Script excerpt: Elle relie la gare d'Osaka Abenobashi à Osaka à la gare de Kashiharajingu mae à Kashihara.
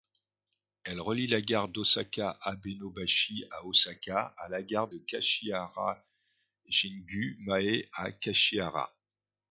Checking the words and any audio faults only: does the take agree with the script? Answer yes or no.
yes